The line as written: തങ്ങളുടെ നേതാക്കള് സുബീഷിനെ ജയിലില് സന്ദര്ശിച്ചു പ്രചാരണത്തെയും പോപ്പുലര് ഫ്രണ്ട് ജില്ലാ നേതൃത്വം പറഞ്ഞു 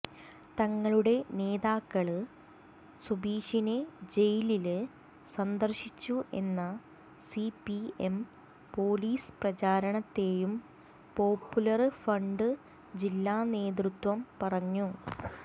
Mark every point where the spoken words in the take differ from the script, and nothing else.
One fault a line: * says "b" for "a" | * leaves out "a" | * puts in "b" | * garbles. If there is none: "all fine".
* puts in "എന്ന സിപിഎം പോലീസ്"